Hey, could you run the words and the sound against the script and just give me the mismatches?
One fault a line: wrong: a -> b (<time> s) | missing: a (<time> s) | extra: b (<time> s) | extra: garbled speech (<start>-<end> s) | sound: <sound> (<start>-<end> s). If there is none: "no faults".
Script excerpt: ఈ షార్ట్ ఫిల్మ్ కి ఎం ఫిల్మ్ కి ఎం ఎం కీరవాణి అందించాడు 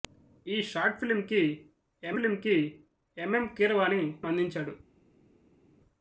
no faults